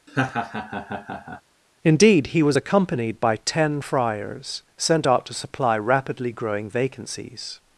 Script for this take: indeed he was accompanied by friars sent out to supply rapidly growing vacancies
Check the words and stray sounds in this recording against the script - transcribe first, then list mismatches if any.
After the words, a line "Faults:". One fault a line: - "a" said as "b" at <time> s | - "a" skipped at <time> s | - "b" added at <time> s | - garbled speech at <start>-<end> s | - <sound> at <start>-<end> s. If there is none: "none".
indeed he was accompanied by ten friars sent out to supply rapidly growing vacancies
Faults:
- laugh at 0.1-1.4 s
- "ten" added at 3.4 s